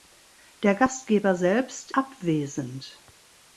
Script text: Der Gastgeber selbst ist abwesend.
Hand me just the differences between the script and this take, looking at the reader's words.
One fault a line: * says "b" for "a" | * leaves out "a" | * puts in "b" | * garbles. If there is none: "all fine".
* leaves out "ist"